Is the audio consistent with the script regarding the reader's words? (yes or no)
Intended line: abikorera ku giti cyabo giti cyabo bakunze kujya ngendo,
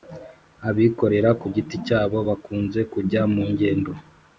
no